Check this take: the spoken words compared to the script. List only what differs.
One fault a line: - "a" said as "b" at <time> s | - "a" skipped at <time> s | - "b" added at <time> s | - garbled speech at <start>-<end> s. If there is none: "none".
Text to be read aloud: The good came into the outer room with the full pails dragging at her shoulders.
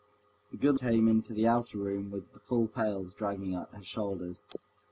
none